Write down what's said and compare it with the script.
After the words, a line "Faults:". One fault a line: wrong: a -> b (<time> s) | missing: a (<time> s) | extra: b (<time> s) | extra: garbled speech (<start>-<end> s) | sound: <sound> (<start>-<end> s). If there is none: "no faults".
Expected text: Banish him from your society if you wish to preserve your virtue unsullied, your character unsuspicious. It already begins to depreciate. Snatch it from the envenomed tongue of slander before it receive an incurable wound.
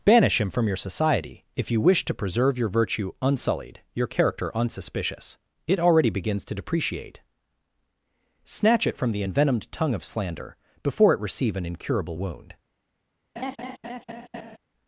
Banish him from your society if you wish to preserve your virtue unsullied, your character unsuspicious. It already begins to depreciate. Snatch it from the envenomed tongue of slander before it receive an incurable wound.
Faults:
sound: laugh (13.4-14.6 s)